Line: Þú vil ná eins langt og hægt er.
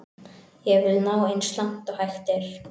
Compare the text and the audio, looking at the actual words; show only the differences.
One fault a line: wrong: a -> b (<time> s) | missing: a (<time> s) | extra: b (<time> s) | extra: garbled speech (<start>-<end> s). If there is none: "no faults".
wrong: Þú -> Ég (0.7 s)